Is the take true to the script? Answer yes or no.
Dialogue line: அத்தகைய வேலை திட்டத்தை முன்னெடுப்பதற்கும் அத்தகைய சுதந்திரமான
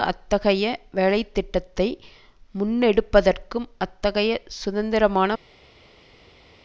yes